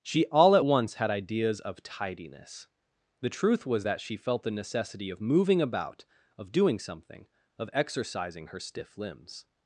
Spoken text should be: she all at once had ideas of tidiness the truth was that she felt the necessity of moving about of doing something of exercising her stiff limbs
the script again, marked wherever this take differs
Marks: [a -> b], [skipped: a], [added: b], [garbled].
she all at once had ideas of tidiness the truth was that she felt the necessity of moving about of doing something of exercising her stiff limbs